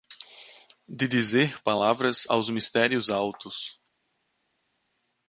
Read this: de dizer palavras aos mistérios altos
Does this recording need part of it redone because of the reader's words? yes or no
no